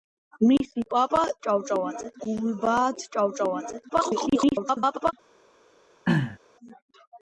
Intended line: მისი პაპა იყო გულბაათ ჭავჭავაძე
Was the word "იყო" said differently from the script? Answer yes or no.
yes